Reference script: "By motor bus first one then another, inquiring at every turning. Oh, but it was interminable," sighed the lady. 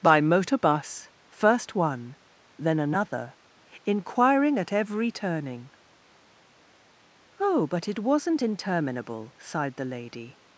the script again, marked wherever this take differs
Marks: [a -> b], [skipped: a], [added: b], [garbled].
"By motor bus first one then another, inquiring at every turning. Oh, but it [was -> wasn't] interminable," sighed the lady.